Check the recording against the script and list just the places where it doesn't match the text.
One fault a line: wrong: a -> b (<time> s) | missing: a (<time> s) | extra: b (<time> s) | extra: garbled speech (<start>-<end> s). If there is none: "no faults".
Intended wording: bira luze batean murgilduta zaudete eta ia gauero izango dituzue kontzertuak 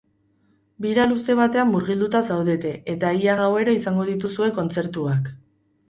no faults